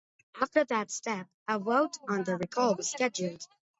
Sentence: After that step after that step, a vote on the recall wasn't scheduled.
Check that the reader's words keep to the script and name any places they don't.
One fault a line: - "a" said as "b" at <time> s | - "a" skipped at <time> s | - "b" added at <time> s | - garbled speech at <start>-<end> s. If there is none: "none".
- "after that step" skipped at 1.3 s
- "wasn't" said as "was" at 2.8 s